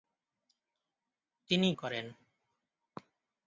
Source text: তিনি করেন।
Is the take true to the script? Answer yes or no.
yes